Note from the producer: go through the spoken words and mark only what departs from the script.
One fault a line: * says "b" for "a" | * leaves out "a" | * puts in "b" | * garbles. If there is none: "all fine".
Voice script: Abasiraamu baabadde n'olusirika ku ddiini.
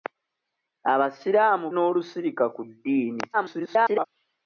* leaves out "baabadde"
* garbles